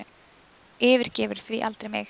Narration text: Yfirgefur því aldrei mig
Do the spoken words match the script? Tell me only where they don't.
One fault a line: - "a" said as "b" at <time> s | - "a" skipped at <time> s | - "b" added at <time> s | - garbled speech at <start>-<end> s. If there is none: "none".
none